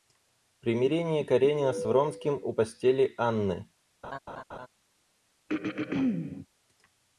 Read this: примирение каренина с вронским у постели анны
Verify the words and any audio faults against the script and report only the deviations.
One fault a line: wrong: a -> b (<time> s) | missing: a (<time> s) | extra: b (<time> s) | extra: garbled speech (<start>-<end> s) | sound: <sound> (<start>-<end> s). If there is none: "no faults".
sound: laugh (4.0-4.7 s)
sound: throat clearing (5.5-6.5 s)